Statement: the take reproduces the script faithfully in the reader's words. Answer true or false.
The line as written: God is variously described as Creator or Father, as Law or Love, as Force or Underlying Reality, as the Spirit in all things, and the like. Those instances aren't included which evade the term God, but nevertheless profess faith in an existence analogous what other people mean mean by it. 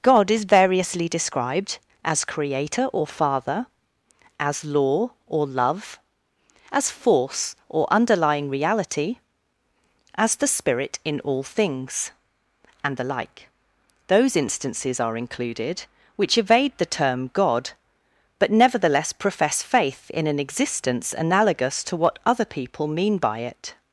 false